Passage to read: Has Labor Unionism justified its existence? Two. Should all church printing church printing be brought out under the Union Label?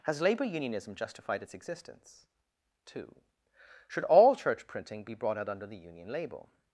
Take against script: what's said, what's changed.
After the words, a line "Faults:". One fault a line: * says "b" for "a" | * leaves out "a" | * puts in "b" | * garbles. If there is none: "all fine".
Has Labor Unionism justified its existence? Two. Should all church printing be brought out under the Union Label?
Faults:
* leaves out "church printing"